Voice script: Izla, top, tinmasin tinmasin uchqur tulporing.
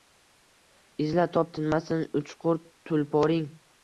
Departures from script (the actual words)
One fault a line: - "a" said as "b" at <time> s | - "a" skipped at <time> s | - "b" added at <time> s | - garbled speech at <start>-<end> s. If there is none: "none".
- "tinmasin" skipped at 2.0 s